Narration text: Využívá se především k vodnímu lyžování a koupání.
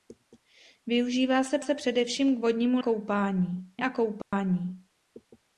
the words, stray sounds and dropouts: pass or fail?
fail